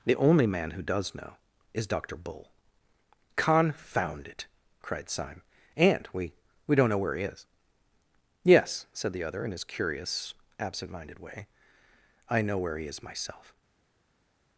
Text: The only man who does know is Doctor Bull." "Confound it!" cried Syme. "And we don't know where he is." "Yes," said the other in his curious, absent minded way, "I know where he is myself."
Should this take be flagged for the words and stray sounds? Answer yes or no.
yes